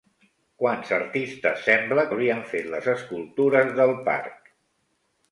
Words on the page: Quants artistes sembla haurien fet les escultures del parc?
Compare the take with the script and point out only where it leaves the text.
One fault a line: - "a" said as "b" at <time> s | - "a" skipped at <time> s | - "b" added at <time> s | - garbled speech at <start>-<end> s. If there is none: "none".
none